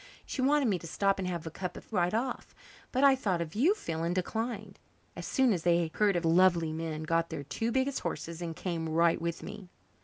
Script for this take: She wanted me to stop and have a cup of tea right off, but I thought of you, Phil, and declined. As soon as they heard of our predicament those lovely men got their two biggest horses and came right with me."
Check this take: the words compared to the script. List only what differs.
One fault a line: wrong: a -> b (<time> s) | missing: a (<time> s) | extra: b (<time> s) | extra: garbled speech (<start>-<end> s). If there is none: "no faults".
missing: tea (1.9 s)
missing: our predicament those (6.2 s)